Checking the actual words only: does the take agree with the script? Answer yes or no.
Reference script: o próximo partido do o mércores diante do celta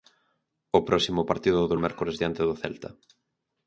yes